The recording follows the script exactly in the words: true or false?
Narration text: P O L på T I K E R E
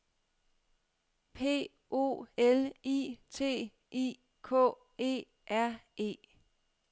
false